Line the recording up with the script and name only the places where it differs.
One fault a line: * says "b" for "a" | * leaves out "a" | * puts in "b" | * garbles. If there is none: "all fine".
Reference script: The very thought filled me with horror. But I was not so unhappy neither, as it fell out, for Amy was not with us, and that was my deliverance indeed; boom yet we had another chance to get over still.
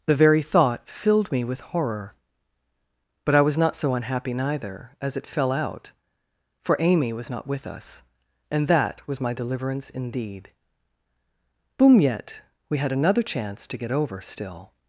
all fine